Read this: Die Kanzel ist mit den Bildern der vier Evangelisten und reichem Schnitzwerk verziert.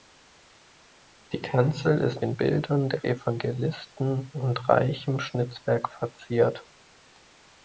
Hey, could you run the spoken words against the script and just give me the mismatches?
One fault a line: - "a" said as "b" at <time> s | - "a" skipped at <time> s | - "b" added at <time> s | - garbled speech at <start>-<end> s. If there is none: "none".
- "mit" skipped at 2.2 s
- "vier" skipped at 3.0 s